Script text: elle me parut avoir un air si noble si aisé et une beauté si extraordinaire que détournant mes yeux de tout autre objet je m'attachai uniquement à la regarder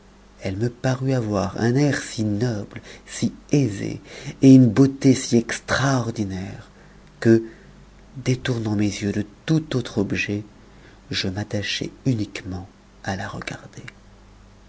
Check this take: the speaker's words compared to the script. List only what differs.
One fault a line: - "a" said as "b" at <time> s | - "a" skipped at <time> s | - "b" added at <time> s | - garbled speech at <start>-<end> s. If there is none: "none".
none